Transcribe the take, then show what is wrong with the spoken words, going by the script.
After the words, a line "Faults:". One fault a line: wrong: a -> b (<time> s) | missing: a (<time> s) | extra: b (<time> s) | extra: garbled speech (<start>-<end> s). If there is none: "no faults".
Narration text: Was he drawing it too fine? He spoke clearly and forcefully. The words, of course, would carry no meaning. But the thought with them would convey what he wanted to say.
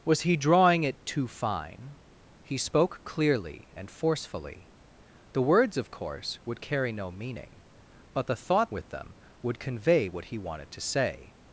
Was he drawing it too fine? He spoke clearly and forcefully. The words, of course, would carry no meaning. But the thought with them would convey what he wanted to say.
Faults:
no faults